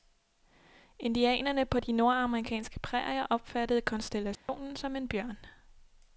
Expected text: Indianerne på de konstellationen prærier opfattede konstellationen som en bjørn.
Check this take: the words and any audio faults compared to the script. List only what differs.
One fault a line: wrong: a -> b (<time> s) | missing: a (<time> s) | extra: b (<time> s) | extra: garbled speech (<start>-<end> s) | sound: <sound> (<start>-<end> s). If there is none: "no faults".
wrong: konstellationen -> nordamerikanske (1.9 s)
sound: dropout (4.4-4.5 s)